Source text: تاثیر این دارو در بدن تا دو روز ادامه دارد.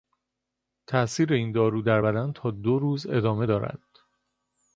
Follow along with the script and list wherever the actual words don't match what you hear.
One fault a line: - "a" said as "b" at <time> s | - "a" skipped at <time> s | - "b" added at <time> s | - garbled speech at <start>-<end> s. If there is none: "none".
none